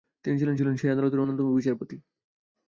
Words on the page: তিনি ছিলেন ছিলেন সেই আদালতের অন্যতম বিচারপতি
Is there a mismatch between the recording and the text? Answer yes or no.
no